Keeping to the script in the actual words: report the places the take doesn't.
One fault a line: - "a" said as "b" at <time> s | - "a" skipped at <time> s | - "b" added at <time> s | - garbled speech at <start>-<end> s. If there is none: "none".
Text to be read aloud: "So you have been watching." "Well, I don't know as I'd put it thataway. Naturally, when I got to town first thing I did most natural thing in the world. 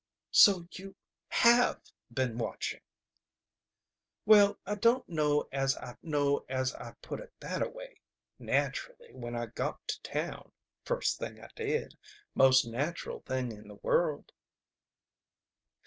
- "know as I'd" added at 6.0 s